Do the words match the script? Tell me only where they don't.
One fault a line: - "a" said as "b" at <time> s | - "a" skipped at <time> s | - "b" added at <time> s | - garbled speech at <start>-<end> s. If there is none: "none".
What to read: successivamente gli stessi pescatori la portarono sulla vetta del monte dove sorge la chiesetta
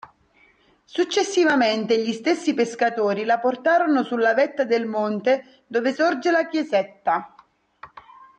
none